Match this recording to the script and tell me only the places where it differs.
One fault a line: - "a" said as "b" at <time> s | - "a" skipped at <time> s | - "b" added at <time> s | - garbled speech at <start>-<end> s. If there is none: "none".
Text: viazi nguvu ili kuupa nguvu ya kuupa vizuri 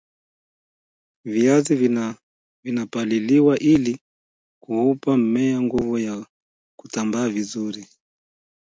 - "nguvu" said as "vinapaliliwa" at 2.6 s
- "mmea" added at 5.2 s
- "kuupa" said as "kutambaa" at 6.8 s